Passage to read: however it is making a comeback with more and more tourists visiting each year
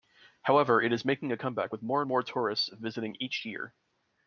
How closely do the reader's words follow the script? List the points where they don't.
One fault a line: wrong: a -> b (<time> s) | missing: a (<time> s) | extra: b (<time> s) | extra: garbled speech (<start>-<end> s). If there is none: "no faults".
no faults